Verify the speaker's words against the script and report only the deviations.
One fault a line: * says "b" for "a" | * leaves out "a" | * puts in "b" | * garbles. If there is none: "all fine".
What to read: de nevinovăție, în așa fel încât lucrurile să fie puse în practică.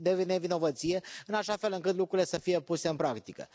all fine